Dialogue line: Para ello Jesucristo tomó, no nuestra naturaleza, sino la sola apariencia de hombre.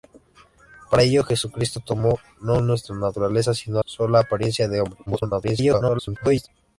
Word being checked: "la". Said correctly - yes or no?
no